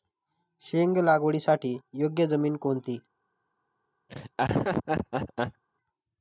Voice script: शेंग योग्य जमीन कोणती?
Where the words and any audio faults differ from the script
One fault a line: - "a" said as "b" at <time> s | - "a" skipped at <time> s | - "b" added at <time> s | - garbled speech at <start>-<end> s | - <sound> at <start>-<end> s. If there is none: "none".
- "लागवडीसाठी" added at 1.0 s
- laugh at 4.1-5.6 s